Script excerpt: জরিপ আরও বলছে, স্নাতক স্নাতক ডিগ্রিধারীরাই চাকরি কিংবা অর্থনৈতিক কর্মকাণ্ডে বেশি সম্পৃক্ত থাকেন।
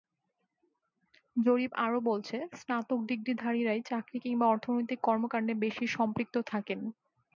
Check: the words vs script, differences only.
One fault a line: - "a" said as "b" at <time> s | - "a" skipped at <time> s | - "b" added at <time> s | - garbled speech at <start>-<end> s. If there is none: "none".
- "স্নাতক" skipped at 3.0 s